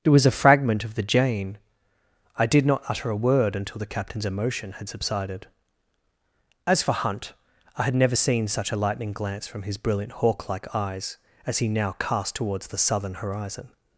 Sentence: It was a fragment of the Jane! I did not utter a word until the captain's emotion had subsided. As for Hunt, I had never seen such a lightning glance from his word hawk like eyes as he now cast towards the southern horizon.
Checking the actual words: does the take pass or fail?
fail